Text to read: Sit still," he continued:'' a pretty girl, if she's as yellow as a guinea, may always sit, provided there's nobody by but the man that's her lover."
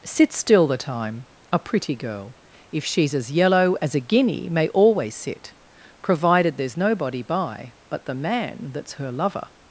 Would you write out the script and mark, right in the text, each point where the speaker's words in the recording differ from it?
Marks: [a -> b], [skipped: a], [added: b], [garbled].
Sit still," [he continued:'' -> the time] a pretty girl, if she's as yellow as a guinea, may always sit, provided there's nobody by but the man that's her lover."